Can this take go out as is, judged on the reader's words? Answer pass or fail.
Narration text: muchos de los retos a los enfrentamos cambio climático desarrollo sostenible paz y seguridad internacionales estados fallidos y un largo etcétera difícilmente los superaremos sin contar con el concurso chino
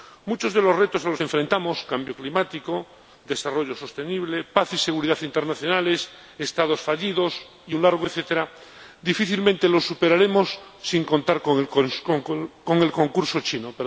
pass